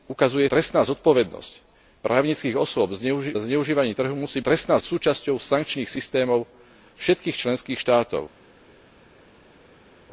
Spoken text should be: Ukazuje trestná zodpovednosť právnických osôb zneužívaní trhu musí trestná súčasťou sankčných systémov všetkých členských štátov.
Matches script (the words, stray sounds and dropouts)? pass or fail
pass